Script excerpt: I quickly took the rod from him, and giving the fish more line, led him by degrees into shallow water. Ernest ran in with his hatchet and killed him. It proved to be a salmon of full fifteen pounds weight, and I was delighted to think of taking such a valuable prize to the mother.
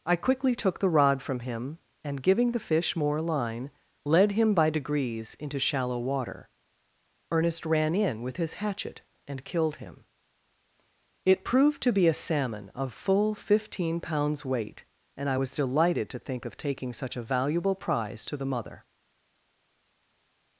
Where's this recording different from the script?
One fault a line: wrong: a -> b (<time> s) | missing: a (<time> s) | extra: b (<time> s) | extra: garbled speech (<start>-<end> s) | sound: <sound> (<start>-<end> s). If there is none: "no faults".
no faults